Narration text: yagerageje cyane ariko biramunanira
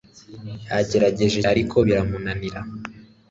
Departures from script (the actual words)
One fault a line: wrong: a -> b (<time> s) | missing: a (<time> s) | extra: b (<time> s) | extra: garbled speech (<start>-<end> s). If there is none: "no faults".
missing: cyane (1.4 s)